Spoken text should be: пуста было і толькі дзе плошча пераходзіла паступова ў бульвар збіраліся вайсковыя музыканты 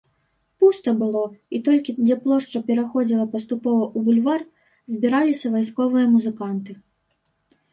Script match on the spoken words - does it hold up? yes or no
yes